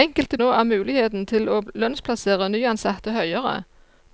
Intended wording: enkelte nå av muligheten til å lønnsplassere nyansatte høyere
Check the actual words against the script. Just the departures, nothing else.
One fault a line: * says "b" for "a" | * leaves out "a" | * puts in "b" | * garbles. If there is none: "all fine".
all fine